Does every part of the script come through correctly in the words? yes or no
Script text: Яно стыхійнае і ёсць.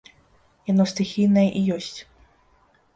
yes